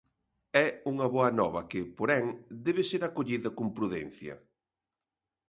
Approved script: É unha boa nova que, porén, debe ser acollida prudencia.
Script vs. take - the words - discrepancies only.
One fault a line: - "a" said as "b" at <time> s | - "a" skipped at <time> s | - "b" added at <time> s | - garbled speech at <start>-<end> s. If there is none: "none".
- "con" added at 3.6 s